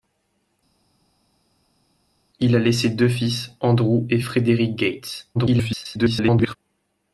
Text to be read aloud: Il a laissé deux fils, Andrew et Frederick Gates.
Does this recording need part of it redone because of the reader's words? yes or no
yes